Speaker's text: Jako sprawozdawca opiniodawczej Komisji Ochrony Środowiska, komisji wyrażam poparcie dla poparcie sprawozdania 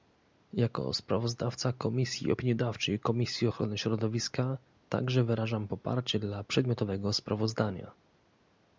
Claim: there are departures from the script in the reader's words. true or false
true